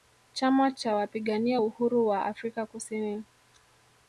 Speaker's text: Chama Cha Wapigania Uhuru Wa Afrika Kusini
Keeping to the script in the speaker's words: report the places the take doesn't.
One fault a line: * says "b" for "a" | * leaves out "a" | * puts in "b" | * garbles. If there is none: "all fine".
all fine